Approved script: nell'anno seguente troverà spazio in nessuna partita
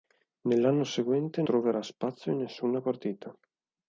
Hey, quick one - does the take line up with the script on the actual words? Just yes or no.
yes